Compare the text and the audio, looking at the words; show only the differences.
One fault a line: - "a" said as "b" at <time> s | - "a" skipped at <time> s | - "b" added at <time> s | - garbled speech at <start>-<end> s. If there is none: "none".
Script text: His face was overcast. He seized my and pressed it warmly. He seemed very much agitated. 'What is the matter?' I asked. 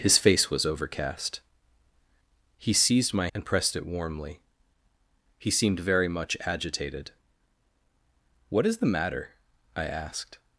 none